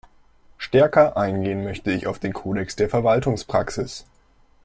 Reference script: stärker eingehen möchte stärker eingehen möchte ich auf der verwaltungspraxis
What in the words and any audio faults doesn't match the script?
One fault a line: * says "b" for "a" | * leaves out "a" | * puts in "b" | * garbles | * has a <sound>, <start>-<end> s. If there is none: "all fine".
* says "ich auf den kodex" for "stärker eingehen möchte ich auf"